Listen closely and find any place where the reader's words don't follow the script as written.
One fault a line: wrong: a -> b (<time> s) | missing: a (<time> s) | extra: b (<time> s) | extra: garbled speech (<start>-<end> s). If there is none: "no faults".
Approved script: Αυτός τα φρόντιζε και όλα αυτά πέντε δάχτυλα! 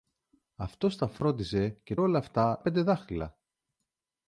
no faults